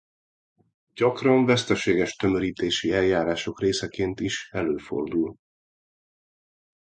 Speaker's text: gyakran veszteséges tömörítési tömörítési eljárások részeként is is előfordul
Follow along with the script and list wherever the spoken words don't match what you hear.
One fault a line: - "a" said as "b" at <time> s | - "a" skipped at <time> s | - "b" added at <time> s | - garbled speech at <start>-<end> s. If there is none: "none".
- "tömörítési" skipped at 2.9 s
- "is" skipped at 4.5 s